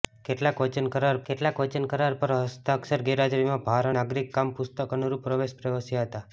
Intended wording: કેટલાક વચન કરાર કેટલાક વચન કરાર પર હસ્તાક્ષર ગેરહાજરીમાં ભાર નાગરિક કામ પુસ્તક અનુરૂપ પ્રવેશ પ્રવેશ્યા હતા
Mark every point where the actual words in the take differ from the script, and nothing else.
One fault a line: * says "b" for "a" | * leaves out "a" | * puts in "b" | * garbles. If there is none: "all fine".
all fine